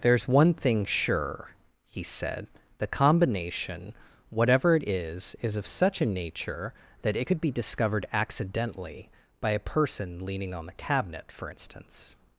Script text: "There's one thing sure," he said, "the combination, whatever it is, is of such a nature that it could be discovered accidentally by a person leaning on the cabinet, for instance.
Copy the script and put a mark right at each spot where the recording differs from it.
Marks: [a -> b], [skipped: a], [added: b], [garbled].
"There's one thing sure," he said, "the combination, whatever it is, is of such a nature that it could be discovered accidentally by a person leaning on the cabinet, for instance.